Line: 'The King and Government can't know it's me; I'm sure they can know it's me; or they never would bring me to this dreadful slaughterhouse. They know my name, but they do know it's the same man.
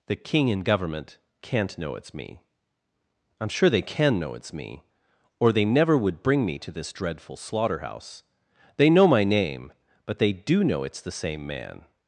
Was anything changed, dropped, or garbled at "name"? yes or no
no